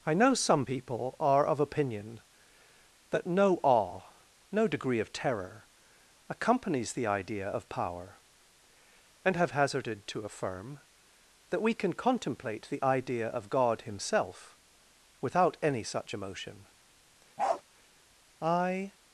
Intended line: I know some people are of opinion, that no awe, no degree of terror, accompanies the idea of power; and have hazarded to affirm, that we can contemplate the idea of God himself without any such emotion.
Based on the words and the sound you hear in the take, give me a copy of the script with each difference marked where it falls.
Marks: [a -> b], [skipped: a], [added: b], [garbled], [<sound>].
I know some people are of opinion, that no awe, no degree of terror, accompanies the idea of power; and have hazarded to affirm, that we can contemplate the idea of God himself without any such emotion. [bark] [added: I]